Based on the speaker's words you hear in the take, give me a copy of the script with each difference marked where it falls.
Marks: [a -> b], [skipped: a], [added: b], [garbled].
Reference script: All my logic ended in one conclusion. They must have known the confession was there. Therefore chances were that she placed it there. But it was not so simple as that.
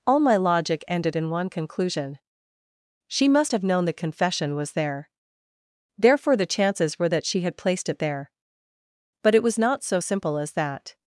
All my logic ended in one conclusion. [They -> She] must have known the confession was there. Therefore [added: the] chances were that she [added: had] placed it there. But it was not so simple as that.